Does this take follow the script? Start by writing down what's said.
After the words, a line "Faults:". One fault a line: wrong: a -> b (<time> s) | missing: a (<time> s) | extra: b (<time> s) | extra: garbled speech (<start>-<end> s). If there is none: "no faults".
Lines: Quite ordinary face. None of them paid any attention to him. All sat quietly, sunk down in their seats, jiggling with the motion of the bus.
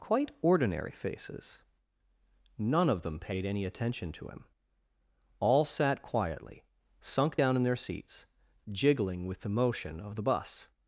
Quite ordinary faces. None of them paid any attention to him. All sat quietly, sunk down in their seats, jiggling with the motion of the bus.
Faults:
wrong: face -> faces (0.9 s)